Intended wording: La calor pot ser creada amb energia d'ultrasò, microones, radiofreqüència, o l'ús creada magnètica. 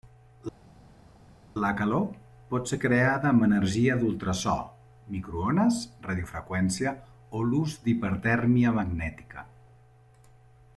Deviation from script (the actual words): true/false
true